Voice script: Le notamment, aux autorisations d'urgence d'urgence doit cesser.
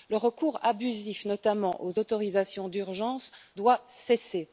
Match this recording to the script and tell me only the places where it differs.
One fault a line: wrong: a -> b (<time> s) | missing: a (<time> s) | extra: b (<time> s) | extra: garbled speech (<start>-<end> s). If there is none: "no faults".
extra: recours abusif (0.2 s)
missing: d'urgence (3.3 s)